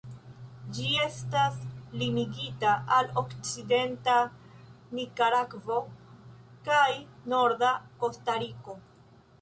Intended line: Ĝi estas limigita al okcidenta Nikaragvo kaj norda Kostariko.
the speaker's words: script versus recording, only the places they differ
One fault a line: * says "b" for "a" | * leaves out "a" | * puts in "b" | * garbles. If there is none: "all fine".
all fine